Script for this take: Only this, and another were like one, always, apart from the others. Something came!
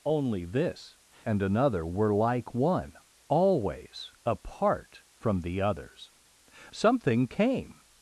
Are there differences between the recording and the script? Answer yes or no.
no